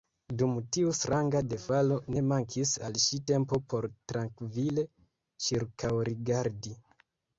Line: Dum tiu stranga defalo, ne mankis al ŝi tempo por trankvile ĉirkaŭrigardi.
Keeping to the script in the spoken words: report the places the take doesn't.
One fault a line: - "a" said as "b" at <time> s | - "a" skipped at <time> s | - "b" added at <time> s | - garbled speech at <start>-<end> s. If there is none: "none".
none